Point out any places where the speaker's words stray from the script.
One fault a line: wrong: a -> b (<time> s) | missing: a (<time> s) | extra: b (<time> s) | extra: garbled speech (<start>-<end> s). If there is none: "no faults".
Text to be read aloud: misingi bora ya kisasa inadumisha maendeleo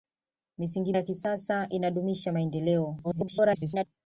missing: bora (0.9 s)
extra: garbled speech (3.0-3.8 s)